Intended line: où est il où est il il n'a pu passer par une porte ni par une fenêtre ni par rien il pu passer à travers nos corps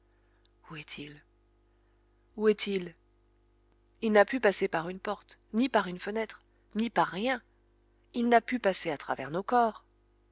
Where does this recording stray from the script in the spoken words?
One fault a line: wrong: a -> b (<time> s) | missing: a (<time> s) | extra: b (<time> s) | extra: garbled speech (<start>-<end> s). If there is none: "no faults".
extra: n'a (8.3 s)